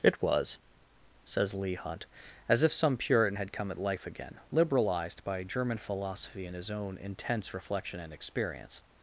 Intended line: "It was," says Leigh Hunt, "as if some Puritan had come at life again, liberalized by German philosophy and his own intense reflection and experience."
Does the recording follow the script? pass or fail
pass